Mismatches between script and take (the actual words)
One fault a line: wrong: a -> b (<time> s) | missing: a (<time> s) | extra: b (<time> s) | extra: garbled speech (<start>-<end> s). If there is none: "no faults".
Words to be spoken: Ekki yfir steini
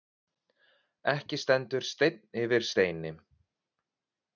extra: stendur steinn (1.4 s)